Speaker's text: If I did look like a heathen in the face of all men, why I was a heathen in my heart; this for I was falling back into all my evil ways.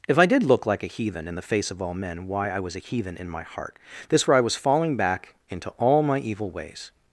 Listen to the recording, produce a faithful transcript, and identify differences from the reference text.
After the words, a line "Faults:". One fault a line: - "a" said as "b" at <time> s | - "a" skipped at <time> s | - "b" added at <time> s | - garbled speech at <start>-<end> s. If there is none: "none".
If I did look like a heathen in the face of all men, why I was a heathen in my heart; this for I was falling back into all my evil ways.
Faults:
none